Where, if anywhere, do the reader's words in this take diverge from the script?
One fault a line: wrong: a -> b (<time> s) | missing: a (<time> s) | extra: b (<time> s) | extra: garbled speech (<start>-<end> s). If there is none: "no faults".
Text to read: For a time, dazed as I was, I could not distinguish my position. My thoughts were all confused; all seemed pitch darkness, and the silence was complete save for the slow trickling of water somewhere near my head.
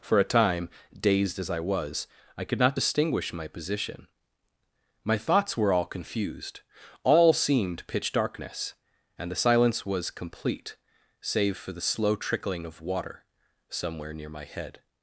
no faults